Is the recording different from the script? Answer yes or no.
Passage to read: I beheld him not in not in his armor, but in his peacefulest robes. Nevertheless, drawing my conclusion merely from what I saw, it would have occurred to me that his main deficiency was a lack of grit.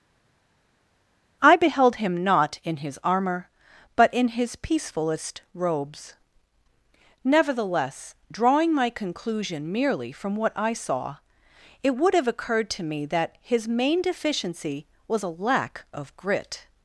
yes